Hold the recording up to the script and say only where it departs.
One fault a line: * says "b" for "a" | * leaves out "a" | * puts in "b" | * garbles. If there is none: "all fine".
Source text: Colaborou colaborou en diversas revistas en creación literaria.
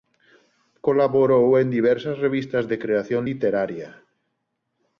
* leaves out "colaborou"
* says "de" for "en"